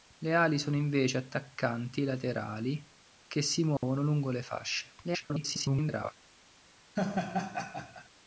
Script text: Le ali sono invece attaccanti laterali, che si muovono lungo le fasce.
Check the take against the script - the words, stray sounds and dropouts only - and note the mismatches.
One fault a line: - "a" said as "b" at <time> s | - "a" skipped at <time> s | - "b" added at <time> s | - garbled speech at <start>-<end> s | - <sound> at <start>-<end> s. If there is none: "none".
- dropout at 3.8-3.8 s
- garbled speech at 5.0-6.1 s
- laugh at 7.0-8.1 s